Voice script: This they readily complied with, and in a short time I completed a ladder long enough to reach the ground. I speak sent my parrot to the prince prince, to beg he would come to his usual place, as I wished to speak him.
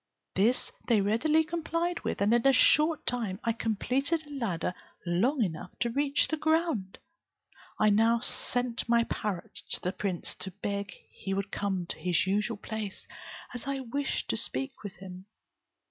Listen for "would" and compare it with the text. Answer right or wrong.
right